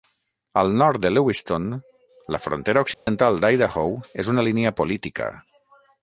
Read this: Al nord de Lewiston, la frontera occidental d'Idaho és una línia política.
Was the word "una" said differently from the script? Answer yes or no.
no